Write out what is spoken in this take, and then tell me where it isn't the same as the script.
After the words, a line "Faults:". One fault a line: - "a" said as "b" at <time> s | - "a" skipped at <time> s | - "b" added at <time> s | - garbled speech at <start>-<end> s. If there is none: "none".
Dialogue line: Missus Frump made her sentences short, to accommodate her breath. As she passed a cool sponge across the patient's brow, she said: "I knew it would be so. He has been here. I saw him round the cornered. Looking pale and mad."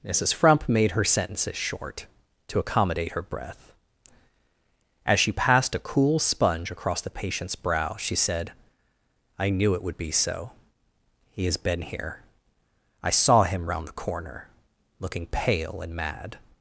Missus Frump made her sentences short, to accommodate her breath. As she passed a cool sponge across the patient's brow, she said: "I knew it would be so. He has been here. I saw him round the corner. Looking pale and mad."
Faults:
- "cornered" said as "corner" at 14.0 s